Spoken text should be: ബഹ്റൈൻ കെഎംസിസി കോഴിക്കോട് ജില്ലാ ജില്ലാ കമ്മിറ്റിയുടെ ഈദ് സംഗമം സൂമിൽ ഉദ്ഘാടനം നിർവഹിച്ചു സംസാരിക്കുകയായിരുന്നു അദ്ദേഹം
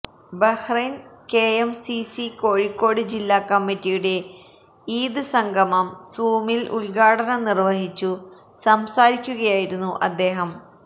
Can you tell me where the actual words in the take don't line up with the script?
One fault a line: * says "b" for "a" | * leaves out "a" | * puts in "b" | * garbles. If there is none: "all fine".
* leaves out "ജില്ലാ"